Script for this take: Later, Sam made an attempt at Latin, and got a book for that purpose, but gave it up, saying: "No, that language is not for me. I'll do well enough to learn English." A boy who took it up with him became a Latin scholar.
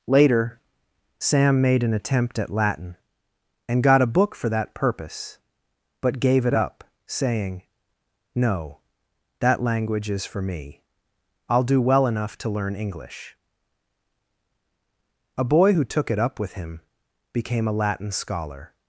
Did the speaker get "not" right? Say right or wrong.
wrong